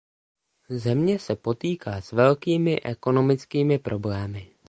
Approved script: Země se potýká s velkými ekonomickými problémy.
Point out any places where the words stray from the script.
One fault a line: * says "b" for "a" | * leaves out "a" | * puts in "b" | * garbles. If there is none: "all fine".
all fine